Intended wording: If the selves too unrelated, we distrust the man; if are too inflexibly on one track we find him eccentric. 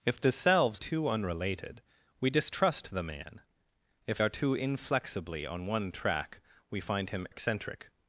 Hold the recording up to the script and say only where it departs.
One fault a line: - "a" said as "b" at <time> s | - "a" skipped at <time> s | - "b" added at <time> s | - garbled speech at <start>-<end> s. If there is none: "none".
none